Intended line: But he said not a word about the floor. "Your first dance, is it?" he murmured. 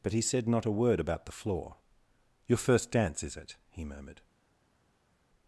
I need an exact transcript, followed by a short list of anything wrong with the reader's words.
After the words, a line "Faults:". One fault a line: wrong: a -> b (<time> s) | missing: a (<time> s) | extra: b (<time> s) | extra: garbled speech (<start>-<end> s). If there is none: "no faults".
But he said not a word about the floor. "Your first dance, is it?" he murmured.
Faults:
no faults